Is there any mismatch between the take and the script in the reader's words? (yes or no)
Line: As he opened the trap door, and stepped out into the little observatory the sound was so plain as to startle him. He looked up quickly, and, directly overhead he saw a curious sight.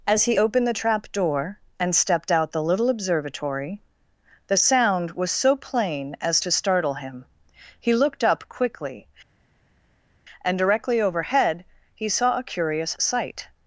yes